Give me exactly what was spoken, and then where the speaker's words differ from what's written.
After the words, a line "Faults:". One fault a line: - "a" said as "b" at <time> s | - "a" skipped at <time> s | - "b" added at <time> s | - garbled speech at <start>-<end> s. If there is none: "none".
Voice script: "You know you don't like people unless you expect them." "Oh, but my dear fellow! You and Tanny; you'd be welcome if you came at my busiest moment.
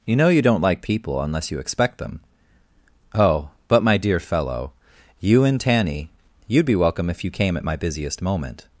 "You know you don't like people unless you expect them." "Oh, but my dear fellow! You and Tanny; you'd be welcome if you came at my busiest moment.
Faults:
none